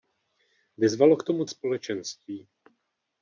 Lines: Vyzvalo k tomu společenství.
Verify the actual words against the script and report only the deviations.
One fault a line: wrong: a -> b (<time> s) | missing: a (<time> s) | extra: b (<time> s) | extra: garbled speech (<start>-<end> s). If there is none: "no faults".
no faults